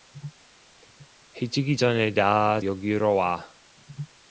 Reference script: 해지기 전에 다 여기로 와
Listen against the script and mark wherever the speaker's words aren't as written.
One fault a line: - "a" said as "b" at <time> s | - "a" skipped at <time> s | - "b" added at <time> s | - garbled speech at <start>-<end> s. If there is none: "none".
none